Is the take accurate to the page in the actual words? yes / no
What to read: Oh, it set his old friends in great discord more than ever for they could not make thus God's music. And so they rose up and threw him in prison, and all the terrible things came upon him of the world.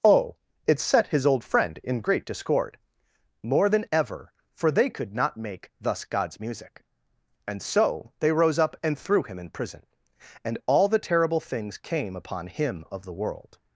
no